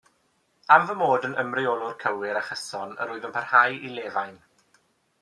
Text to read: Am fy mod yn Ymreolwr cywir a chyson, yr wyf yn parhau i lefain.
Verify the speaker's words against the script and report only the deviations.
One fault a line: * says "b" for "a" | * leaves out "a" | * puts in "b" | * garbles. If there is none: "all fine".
all fine